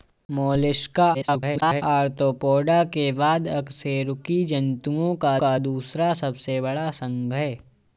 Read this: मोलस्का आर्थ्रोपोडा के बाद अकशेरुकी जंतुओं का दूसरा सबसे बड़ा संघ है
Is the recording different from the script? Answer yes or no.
yes